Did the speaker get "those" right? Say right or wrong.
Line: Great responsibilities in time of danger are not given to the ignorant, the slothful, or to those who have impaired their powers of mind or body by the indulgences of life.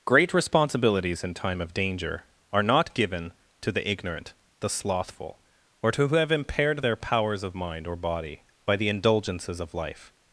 wrong